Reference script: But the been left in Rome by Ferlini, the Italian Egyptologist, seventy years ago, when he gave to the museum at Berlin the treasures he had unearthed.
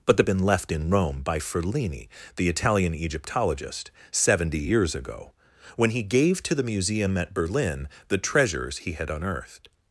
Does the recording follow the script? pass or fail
pass